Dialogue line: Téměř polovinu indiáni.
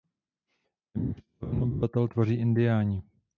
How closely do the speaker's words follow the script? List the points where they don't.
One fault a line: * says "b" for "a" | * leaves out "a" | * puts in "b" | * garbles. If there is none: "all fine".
* puts in "obyvatel tvoří"